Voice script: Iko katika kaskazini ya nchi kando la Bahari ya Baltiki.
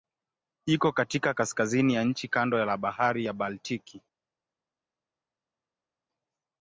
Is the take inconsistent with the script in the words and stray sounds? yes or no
no